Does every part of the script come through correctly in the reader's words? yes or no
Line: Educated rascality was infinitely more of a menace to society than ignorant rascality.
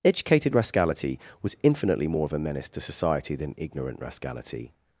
yes